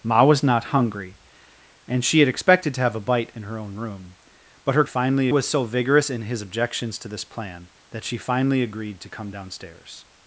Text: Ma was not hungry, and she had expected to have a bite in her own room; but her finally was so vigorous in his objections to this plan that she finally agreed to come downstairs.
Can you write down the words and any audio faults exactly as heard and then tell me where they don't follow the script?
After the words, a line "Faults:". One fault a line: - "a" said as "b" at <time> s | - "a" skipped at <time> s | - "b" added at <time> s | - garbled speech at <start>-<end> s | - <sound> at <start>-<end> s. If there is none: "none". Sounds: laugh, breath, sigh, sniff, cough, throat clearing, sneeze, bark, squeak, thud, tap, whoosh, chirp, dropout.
Ma was not hungry, and she had expected to have a bite in her own room; but her finally was so vigorous in his objections to this plan that she finally agreed to come downstairs.
Faults:
none